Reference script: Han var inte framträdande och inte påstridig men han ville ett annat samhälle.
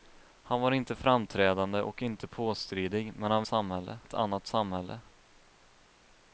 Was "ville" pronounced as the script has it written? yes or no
no